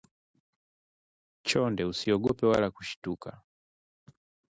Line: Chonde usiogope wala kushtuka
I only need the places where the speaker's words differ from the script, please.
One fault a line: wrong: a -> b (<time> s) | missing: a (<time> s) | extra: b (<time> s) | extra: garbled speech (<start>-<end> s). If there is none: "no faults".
no faults